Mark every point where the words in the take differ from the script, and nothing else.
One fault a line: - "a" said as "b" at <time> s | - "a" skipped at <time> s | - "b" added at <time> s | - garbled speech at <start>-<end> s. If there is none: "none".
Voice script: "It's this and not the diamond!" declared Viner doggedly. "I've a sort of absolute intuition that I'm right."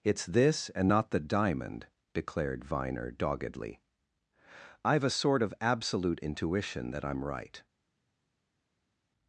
none